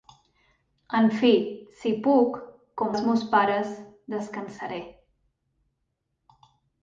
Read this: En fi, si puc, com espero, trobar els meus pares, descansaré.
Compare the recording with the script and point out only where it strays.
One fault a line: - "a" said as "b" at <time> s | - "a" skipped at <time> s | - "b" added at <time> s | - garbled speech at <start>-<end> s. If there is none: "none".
- "espero trobar" skipped at 2.9 s